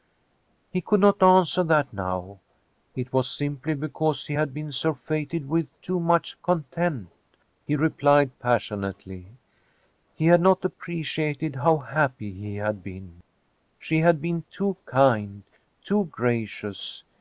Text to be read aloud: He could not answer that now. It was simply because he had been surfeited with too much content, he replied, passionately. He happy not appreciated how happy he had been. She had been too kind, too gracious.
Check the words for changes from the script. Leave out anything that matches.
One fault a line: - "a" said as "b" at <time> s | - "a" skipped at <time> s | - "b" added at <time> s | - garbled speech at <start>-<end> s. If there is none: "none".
- "happy" said as "had" at 10.3 s